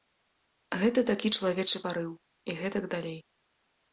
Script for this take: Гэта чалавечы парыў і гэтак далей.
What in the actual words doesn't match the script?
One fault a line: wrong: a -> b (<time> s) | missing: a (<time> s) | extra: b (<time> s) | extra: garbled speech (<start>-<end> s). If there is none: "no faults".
extra: такі (1.1 s)